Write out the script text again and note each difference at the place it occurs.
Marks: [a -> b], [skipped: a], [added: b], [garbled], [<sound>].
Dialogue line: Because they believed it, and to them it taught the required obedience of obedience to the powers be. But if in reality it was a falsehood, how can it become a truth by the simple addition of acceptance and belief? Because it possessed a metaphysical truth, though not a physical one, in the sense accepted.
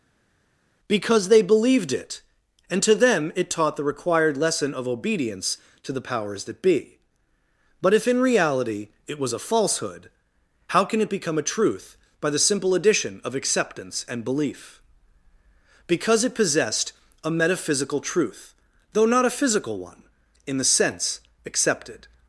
Because they believed it, and to them it taught the required [obedience -> lesson] of obedience to the powers [added: that] be. But if in reality it was a falsehood, how can it become a truth by the simple addition of acceptance and belief? Because it possessed a metaphysical truth, though not a physical one, in the sense accepted.